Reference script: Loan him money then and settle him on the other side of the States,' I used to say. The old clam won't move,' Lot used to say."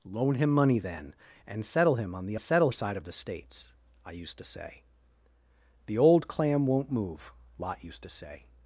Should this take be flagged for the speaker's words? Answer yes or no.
yes